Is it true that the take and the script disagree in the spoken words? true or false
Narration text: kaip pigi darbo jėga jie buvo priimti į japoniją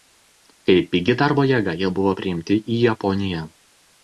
false